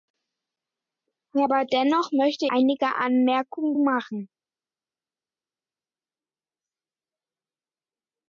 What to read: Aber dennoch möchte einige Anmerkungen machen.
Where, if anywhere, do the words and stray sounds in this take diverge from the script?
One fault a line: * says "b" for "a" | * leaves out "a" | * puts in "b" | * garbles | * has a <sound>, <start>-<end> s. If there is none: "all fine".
all fine